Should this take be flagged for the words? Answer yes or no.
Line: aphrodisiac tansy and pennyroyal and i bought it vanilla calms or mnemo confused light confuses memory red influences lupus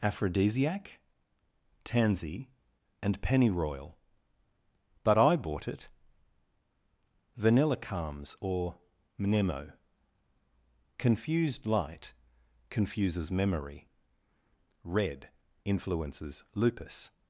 yes